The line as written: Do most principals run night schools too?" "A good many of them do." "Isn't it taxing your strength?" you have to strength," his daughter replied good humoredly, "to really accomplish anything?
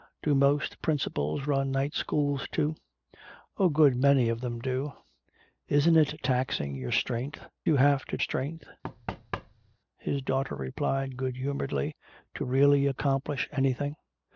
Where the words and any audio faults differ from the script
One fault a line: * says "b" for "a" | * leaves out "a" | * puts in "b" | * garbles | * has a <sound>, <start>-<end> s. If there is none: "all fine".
* has a thud, 8.8-9.8 s